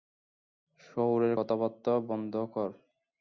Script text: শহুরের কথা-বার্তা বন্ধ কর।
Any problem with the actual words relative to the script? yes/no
no